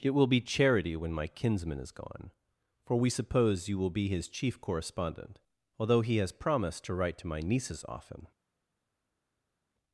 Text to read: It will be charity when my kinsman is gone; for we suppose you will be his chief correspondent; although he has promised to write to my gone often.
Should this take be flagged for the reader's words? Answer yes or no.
yes